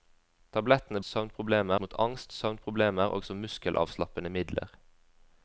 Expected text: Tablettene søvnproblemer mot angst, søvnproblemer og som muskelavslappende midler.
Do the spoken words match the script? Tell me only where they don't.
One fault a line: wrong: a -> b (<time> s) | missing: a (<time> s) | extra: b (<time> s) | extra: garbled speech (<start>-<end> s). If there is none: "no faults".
no faults